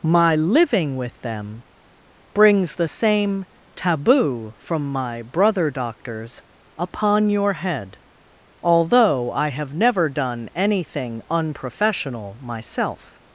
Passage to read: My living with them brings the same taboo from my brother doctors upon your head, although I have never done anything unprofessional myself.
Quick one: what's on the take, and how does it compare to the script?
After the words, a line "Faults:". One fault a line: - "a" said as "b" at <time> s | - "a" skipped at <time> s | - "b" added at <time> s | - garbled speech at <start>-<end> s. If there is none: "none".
My living with them brings the same taboo from my brother doctors upon your head, although I have never done anything unprofessional myself.
Faults:
none